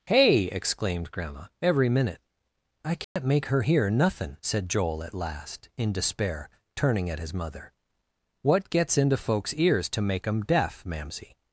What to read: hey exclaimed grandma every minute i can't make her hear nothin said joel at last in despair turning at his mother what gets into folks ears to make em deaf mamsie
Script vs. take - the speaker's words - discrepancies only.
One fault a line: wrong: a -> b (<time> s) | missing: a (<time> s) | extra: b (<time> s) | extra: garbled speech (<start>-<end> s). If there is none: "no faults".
no faults